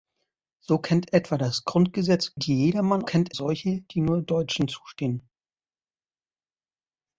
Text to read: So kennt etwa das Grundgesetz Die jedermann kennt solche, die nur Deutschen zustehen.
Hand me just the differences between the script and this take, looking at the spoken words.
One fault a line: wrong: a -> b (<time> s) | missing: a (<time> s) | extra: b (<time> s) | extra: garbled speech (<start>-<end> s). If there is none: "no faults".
no faults